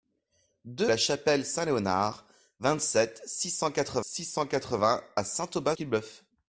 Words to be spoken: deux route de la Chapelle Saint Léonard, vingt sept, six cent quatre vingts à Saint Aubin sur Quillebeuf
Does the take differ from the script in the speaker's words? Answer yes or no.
yes